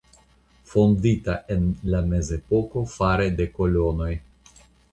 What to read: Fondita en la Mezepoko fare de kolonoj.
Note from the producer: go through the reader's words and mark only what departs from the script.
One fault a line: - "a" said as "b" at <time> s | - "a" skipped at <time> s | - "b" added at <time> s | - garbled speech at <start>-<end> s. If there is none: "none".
none